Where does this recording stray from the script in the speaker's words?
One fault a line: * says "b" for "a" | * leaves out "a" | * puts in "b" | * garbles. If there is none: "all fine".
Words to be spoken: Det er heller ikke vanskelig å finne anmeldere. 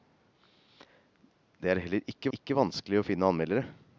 * puts in "ikke"